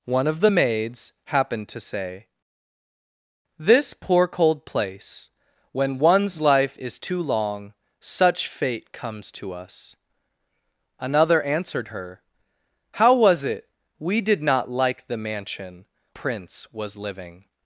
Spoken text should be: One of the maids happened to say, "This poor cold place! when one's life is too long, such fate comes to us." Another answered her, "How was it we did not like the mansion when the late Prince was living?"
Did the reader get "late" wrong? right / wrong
wrong